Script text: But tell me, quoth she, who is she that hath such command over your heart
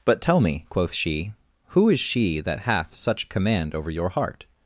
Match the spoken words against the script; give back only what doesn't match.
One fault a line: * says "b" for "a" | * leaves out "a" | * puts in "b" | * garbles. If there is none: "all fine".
all fine